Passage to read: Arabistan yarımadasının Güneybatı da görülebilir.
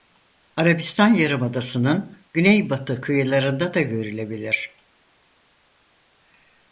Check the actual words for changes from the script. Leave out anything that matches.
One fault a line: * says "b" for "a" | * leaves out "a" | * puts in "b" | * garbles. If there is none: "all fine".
* puts in "kıyılarında"